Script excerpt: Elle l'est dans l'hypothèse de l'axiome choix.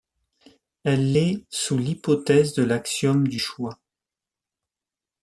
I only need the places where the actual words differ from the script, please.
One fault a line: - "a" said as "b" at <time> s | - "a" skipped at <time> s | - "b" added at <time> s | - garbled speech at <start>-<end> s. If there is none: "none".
- "dans" said as "sous" at 1.5 s
- "du" added at 3.3 s